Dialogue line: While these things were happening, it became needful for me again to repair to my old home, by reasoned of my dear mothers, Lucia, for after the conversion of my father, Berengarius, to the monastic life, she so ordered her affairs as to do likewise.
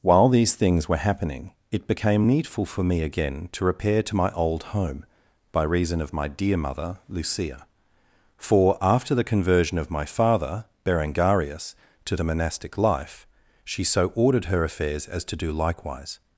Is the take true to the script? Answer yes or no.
no